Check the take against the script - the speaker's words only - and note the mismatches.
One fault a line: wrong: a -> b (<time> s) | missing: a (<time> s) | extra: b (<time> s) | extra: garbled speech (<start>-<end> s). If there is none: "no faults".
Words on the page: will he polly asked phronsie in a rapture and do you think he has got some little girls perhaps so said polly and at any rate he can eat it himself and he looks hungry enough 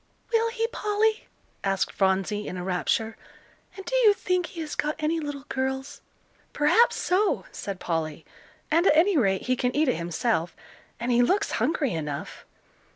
wrong: some -> any (5.0 s)